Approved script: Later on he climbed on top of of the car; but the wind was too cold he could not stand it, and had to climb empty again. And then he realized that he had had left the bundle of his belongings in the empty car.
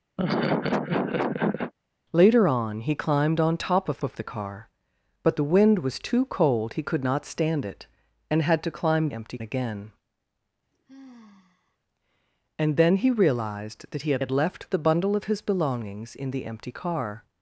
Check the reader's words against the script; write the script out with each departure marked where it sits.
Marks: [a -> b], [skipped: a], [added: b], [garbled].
Later on he climbed on top of of the car; but the wind was too cold he could not stand it, and had to climb empty again. And then he realized that he had had left the bundle of his belongings in the empty car.